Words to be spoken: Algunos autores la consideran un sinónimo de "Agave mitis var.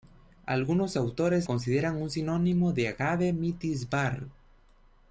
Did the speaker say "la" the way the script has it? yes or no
no